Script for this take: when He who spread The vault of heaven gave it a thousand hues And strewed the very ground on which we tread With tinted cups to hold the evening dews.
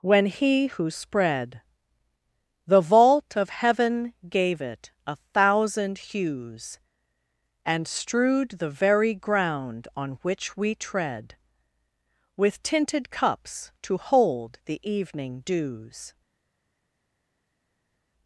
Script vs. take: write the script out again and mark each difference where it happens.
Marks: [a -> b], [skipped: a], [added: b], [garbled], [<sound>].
when He who spread The vault of heaven gave it a thousand hues And strewed the very ground on which we tread With tinted cups to hold the evening dews.